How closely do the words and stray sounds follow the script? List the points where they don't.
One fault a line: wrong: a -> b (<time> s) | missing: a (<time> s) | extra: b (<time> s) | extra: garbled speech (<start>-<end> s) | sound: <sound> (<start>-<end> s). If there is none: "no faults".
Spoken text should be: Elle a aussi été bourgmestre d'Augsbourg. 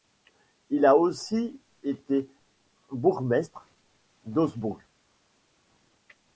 wrong: Elle -> Il (0.7 s)